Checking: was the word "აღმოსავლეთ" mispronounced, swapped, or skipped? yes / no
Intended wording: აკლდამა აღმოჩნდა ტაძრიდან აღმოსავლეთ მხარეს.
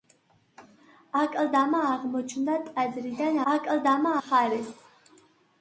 yes